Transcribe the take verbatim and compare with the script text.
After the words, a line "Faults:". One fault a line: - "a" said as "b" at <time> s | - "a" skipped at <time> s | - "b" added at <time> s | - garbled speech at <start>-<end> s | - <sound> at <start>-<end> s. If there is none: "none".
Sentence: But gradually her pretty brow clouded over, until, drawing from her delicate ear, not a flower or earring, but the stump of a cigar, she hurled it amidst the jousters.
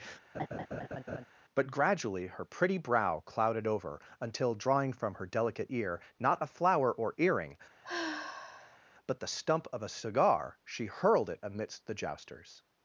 But gradually her pretty brow clouded over, until, drawing from her delicate ear, not a flower or earring, but the stump of a cigar, she hurled it amidst the jousters.
Faults:
- laugh at 0.3-1.3 s
- sigh at 7.8-8.8 s